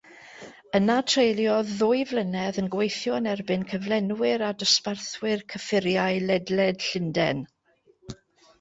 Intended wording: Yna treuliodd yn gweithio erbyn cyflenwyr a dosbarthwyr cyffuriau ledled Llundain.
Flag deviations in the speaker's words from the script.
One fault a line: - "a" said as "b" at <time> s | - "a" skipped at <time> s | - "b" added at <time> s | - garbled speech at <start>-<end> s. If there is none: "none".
- "ddwy flynedd" added at 1.8 s
- "yn" added at 3.2 s